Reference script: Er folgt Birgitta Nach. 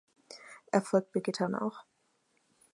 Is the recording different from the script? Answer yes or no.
no